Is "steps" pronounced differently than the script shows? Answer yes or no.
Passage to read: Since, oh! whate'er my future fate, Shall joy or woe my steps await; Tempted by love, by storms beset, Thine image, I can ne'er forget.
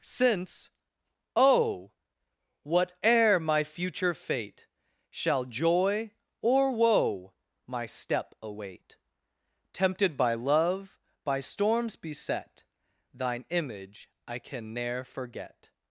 yes